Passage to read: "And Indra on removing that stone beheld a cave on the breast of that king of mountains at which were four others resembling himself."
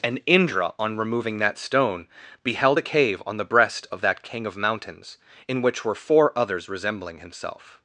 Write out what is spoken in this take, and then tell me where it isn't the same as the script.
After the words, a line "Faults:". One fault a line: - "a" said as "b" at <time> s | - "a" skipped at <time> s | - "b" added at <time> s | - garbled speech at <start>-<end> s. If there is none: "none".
"And Indra on removing that stone beheld a cave on the breast of that king of mountains in which were four others resembling himself."
Faults:
- "at" said as "in" at 5.5 s